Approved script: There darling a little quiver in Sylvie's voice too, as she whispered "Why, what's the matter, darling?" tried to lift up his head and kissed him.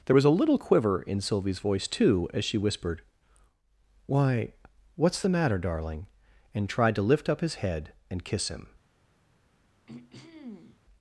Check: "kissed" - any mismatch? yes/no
yes